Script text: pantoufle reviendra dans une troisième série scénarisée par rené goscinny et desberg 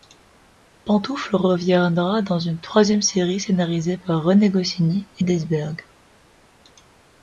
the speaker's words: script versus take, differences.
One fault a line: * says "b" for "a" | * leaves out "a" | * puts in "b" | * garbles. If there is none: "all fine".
all fine